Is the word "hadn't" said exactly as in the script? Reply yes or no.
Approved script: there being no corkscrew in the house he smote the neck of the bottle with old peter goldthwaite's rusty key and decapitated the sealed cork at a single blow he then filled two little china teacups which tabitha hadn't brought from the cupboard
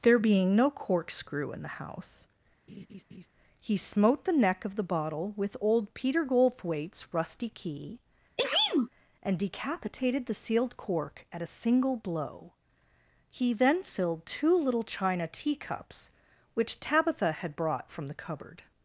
no